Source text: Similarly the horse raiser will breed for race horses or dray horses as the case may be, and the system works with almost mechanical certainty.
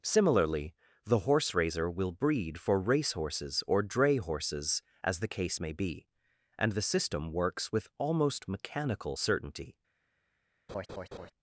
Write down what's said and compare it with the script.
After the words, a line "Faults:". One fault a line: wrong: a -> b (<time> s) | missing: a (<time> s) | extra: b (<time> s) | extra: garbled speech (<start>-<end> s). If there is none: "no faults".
Similarly the horse raiser will breed for race horses or dray horses as the case may be, and the system works with almost mechanical certainty.
Faults:
no faults